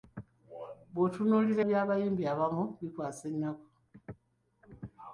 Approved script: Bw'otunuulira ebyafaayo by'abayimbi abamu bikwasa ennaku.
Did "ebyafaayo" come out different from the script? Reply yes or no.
yes